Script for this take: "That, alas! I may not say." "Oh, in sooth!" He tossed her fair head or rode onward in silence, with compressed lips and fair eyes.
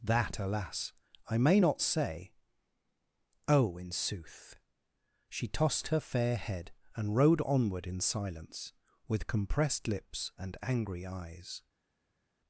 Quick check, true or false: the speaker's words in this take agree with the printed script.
false